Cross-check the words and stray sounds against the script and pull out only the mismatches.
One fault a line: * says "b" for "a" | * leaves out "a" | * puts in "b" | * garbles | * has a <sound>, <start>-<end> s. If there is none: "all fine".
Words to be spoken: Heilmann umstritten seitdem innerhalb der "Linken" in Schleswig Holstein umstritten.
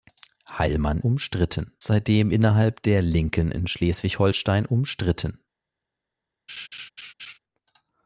* has a laugh, 6.5-7.4 s